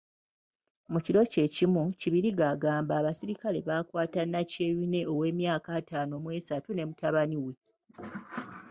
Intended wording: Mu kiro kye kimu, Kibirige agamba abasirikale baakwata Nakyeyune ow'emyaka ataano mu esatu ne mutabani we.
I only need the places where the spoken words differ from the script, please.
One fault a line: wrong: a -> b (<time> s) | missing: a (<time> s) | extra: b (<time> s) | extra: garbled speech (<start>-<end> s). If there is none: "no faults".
no faults